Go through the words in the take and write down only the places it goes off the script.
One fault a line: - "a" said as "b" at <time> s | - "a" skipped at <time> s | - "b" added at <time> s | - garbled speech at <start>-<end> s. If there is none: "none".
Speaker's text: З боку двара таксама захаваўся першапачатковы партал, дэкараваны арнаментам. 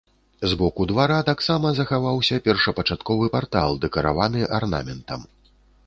none